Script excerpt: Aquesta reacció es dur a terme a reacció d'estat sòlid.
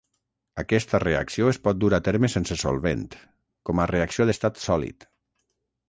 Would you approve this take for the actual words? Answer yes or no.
no